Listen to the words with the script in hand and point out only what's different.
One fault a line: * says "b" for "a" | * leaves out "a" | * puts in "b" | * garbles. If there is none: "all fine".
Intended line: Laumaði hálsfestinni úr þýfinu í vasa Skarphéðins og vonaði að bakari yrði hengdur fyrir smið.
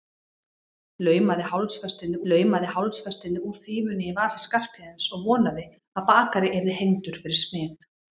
* puts in "laumaði hálsfestinni"